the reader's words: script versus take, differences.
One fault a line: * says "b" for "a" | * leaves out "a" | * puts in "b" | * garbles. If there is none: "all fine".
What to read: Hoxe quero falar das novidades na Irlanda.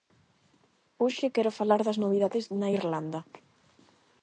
all fine